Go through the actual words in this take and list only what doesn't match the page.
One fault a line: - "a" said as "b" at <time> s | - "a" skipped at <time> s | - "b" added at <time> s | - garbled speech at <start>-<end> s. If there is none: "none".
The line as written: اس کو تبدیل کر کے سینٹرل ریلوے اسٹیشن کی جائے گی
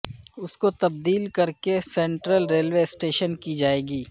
none